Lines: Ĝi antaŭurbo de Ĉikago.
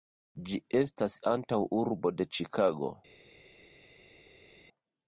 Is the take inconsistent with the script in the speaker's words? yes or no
yes